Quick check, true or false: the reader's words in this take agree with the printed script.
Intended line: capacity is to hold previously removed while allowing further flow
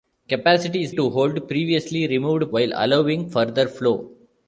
true